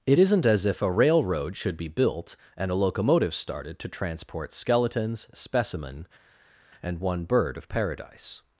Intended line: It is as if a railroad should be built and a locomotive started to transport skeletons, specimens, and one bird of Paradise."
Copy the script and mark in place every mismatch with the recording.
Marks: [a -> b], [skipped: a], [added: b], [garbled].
It [is -> isn't] as if a railroad should be built and a locomotive started to transport skeletons, [specimens, -> specimen] and one bird of Paradise."